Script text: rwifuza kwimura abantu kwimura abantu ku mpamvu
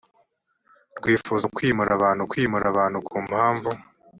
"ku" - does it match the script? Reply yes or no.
yes